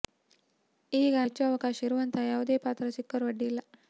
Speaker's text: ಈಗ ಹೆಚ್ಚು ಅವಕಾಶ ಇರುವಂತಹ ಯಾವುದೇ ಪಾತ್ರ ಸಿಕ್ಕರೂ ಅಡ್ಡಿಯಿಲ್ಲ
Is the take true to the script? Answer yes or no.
yes